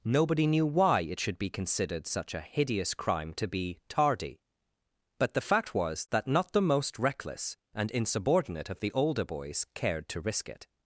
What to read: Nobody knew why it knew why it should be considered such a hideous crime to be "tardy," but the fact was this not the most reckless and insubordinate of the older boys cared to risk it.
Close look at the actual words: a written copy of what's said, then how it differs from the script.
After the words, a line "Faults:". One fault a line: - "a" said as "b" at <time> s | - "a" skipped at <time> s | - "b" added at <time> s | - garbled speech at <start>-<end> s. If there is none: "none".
Nobody knew why it should be considered such a hideous crime to be "tardy," but the fact was that not the most reckless and insubordinate of the older boys cared to risk it.
Faults:
- "knew why it" skipped at 1.2 s
- "this" said as "that" at 6.1 s